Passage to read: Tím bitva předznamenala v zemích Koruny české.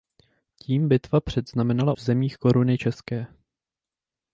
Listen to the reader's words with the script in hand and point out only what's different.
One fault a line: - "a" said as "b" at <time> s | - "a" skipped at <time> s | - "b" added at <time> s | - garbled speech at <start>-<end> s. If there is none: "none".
none